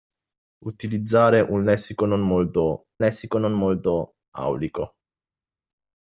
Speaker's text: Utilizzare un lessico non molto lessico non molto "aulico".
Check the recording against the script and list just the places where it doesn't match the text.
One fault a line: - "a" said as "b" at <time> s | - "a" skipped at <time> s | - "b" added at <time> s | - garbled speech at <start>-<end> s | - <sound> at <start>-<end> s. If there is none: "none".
none